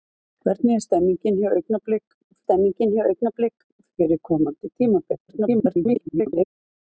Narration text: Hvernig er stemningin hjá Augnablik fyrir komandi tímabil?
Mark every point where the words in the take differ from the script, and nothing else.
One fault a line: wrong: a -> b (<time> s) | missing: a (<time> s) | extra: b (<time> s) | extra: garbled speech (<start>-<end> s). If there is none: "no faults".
extra: stemningin hjá Augnablik (2.4 s)
extra: garbled speech (5.3-6.5 s)